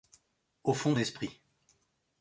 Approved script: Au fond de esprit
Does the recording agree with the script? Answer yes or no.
yes